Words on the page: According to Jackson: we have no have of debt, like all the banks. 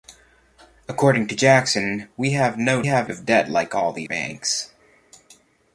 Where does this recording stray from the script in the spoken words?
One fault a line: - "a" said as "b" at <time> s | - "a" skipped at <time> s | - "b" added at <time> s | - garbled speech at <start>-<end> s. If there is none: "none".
none